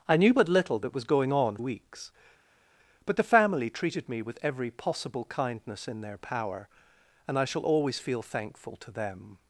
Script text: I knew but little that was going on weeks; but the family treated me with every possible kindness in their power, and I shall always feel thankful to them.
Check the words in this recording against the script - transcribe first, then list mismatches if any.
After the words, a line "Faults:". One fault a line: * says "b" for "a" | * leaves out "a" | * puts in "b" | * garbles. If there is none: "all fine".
I knew but little that was going on weeks; but the family treated me with every possible kindness in their power, and I shall always feel thankful to them.
Faults:
all fine